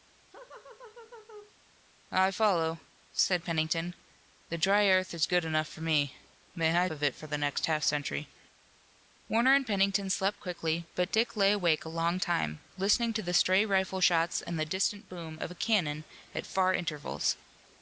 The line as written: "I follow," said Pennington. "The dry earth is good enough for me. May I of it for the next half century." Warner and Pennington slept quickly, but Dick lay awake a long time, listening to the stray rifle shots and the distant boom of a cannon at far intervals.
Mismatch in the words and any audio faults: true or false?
true